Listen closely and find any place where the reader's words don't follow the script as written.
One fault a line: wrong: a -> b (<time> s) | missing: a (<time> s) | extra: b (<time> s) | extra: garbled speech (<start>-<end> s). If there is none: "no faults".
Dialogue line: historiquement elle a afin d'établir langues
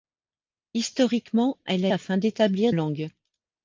no faults